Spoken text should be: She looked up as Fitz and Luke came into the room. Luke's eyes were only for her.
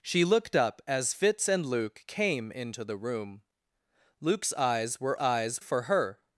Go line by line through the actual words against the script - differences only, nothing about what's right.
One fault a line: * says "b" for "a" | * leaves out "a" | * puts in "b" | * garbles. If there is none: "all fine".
* says "eyes" for "only"